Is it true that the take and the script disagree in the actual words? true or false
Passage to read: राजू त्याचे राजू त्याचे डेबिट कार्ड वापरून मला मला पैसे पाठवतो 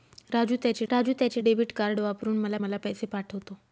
false